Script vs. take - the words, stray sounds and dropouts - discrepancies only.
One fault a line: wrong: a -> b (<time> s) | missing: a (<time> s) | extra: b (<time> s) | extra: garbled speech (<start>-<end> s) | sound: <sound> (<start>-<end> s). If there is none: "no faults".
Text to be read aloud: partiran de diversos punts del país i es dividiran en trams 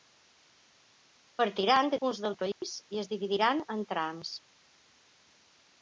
missing: diversos (2.0 s)
sound: dropout (2.5-2.6 s)